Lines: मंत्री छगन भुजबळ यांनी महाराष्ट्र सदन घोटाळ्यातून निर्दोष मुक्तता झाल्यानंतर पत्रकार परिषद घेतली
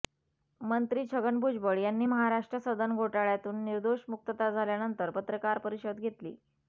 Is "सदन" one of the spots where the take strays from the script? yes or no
no